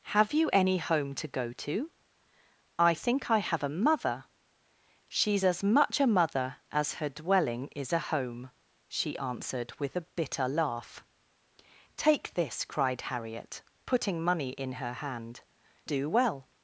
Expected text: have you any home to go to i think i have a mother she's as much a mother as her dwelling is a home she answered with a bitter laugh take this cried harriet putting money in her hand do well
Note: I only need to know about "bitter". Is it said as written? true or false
true